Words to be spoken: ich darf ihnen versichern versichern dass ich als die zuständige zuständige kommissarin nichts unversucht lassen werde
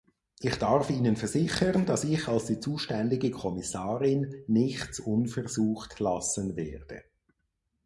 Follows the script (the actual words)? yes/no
no